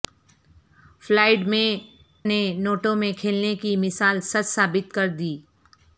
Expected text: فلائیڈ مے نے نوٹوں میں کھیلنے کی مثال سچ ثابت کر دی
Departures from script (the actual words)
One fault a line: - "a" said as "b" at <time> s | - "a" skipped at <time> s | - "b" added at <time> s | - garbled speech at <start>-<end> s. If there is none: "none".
none